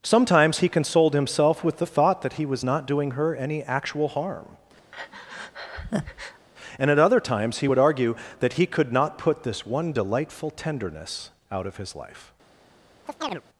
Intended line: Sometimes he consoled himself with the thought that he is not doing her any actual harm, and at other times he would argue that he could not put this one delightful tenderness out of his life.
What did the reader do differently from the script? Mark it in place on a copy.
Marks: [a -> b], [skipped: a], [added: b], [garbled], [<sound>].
Sometimes he consoled himself with the thought that he [is -> was] not doing her any actual harm, [breath] and at other times he would argue that he could not put this one delightful tenderness out of his life. [chirp]